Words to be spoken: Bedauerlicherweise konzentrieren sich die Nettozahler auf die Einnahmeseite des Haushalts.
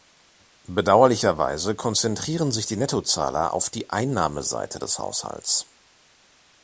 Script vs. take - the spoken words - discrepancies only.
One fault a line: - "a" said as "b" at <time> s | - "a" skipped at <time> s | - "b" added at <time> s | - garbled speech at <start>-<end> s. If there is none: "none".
none